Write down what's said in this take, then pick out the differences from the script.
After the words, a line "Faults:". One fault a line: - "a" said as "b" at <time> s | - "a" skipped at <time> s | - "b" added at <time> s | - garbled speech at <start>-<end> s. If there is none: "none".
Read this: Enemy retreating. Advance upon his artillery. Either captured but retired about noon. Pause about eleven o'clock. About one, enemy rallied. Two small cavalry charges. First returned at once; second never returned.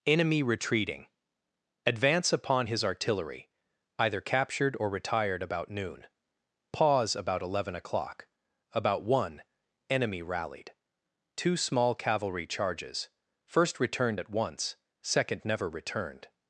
Enemy retreating. Advance upon his artillery. Either captured or retired about noon. Pause about eleven o'clock. About one, enemy rallied. Two small cavalry charges. First returned at once; second never returned.
Faults:
- "but" said as "or" at 4.8 s